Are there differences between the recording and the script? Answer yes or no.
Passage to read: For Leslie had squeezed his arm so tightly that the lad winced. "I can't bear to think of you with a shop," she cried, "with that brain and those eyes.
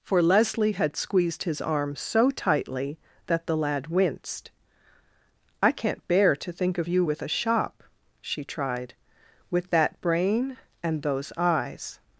yes